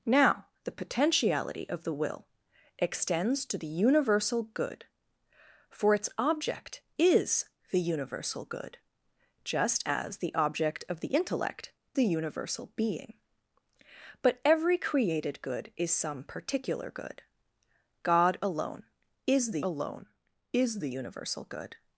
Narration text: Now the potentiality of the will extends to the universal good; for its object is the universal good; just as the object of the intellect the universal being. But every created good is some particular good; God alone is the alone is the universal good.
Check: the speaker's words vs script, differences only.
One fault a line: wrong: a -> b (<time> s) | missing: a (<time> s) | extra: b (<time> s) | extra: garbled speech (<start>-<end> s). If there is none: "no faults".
no faults